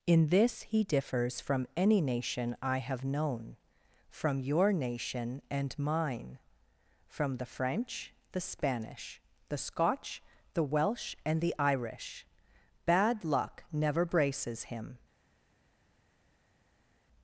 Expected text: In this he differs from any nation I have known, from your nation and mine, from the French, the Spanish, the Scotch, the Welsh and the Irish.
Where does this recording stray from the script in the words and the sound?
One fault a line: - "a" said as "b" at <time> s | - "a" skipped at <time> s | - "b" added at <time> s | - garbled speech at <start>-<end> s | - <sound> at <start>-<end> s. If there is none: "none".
- "Bad luck never braces him" added at 12.9 s